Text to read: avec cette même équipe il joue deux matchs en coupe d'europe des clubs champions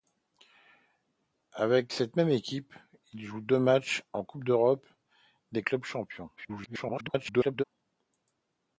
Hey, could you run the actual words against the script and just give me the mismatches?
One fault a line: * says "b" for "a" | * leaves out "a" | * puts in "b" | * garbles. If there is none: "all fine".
* garbles